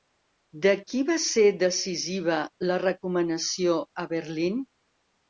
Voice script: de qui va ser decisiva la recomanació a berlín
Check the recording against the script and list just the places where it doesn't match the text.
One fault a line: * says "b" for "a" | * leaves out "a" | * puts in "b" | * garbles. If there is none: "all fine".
all fine